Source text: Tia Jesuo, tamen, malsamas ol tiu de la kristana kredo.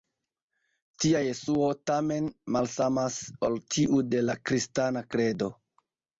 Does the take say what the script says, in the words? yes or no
yes